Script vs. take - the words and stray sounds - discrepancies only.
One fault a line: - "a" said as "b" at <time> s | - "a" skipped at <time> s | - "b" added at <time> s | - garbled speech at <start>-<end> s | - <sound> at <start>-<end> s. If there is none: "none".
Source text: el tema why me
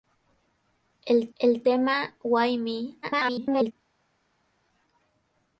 - "el" added at 1.4 s
- garbled speech at 3.0-3.7 s